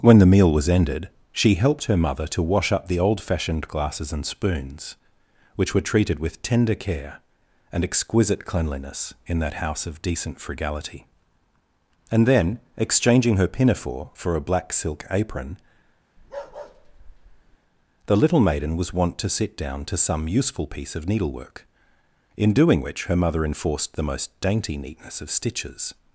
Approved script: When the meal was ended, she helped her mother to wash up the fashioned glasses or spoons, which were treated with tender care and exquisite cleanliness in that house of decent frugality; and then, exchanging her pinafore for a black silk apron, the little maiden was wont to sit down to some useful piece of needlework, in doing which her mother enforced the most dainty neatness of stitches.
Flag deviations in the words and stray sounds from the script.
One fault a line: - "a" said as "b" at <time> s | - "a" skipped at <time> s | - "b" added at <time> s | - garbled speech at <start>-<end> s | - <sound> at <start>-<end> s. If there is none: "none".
- "old" added at 3.0 s
- "or" said as "and" at 4.1 s
- bark at 16.2-17.6 s